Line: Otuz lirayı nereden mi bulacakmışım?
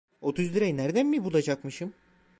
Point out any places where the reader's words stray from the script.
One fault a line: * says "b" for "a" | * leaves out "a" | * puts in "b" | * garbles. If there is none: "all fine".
all fine